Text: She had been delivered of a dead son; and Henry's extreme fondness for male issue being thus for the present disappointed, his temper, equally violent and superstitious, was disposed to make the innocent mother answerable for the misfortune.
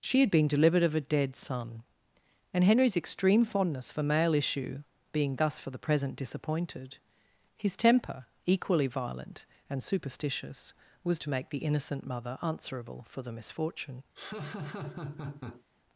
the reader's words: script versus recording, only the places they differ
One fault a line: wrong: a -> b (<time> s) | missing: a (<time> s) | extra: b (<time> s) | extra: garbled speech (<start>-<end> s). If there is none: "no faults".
missing: disposed (11.2 s)